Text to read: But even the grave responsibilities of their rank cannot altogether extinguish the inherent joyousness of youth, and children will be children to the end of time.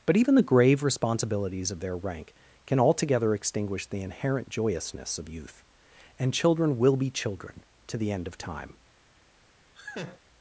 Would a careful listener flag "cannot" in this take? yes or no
yes